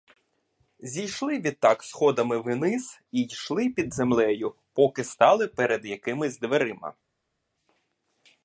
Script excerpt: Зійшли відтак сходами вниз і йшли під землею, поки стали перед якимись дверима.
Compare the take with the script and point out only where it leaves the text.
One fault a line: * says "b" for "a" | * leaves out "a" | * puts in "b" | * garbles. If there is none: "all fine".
all fine